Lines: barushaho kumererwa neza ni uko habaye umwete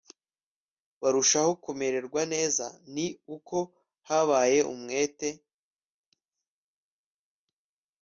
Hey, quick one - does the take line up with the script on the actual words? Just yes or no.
yes